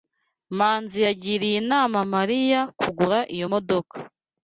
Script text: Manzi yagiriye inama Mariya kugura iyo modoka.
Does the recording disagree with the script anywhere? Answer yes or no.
no